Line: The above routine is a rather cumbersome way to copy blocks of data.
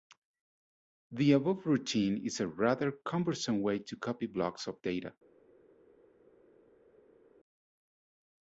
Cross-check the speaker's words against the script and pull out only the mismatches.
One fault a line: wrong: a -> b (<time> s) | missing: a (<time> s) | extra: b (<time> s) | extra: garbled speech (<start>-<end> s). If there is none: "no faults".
no faults